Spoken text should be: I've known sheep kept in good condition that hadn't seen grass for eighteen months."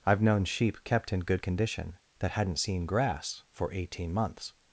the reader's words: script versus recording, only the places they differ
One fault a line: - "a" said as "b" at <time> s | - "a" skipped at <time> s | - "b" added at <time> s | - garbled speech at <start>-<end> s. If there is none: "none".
none